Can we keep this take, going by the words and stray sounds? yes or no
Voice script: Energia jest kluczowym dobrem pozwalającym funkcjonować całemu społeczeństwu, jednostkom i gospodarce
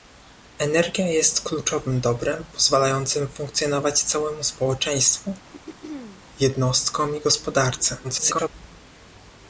no